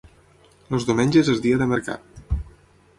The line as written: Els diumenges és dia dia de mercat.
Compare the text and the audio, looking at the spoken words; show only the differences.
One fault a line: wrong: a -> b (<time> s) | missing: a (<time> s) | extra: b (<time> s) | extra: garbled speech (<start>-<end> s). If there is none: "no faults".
missing: dia (1.6 s)